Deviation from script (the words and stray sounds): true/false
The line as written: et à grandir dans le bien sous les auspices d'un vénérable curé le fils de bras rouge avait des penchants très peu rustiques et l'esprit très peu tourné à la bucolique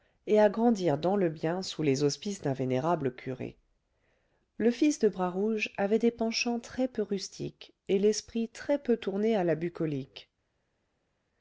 false